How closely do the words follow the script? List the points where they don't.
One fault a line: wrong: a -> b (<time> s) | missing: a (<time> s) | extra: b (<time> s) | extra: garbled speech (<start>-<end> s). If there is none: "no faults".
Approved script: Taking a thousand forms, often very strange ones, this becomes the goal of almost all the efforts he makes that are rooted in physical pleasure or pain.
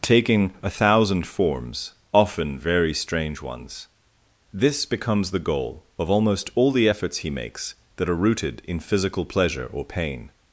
no faults